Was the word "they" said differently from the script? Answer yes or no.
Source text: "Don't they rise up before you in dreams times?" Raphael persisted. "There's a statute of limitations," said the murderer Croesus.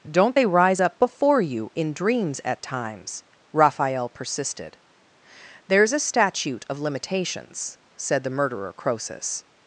no